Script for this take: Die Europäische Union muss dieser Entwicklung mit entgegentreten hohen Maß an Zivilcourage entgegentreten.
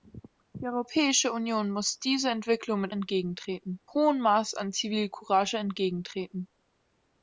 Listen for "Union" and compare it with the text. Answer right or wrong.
right